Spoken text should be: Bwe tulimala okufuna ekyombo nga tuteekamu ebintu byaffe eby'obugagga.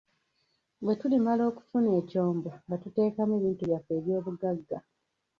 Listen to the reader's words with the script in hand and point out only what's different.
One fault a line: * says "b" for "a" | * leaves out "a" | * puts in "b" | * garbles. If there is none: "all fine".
all fine